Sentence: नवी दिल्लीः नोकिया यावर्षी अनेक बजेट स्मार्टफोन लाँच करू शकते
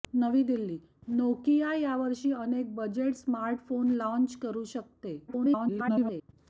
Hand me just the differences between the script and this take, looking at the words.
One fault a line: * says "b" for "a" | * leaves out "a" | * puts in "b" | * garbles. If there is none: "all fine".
* garbles